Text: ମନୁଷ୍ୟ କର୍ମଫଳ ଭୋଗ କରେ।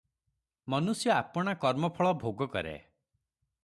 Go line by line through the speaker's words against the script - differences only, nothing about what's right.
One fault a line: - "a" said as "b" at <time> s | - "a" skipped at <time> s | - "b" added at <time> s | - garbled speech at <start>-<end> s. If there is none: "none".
- "ଆପଣା" added at 1.1 s